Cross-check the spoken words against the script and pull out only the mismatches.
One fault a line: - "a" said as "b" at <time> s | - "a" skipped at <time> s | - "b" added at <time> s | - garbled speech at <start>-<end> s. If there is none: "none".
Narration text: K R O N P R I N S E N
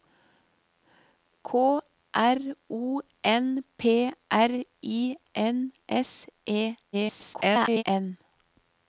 - garbled speech at 6.9-7.8 s